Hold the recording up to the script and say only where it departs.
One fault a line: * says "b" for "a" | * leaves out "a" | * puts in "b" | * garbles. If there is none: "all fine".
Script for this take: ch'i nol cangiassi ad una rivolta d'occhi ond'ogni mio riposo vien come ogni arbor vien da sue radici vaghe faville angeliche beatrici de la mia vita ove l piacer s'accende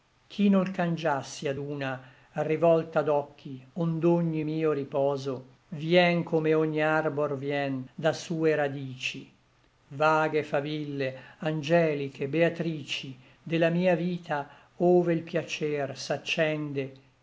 all fine